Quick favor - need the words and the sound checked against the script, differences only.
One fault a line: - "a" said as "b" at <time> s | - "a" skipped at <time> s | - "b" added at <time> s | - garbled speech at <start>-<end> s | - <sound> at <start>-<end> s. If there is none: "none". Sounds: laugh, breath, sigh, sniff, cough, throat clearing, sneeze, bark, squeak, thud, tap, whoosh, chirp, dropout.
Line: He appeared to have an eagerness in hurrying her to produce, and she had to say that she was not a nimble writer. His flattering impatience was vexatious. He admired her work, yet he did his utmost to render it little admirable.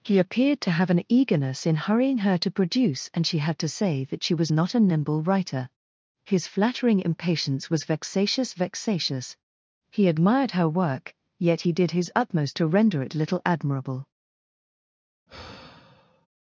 - "vexatious" added at 8.5 s
- sigh at 15.3-16.3 s